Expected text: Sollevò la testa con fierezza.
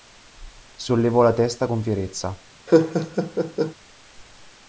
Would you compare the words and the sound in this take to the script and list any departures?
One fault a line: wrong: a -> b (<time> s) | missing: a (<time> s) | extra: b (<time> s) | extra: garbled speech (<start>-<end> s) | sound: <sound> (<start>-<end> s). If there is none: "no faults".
sound: laugh (2.7-3.7 s)